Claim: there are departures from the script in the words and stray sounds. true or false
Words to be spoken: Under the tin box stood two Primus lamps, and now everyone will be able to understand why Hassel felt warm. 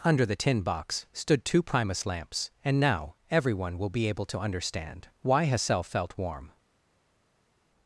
false